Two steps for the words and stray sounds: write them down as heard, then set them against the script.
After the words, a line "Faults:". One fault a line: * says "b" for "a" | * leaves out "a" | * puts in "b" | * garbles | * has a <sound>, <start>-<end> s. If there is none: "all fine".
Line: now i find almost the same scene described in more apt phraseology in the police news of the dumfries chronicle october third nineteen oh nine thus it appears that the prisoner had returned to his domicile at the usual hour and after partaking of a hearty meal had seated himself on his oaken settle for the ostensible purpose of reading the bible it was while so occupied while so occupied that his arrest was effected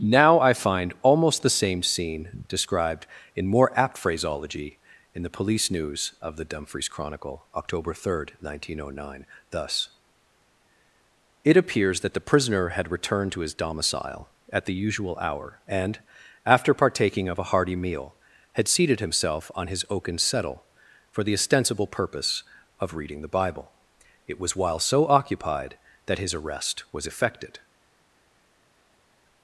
now i find almost the same scene described in more apt phraseology in the police news of the dumfries chronicle october third nineteen oh nine thus it appears that the prisoner had returned to his domicile at the usual hour and after partaking of a hearty meal had seated himself on his oaken settle for the ostensible purpose of reading the bible it was while so occupied that his arrest was effected
Faults:
* leaves out "while so occupied"